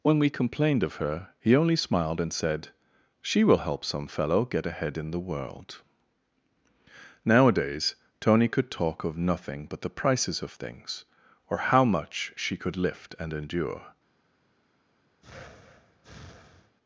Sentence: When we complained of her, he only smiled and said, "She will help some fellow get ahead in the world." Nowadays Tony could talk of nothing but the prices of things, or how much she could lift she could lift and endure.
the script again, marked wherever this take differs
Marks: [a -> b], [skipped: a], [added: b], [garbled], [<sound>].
When we complained of her, he only smiled and said, "She will help some fellow get ahead in the world." Nowadays Tony could talk of nothing but the prices of things, or how much she could lift [skipped: she could lift] and endure. [breath]